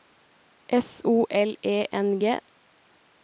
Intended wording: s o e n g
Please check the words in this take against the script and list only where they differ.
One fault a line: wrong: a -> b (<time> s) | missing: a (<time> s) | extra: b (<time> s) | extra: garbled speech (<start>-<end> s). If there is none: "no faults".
extra: l (1.3 s)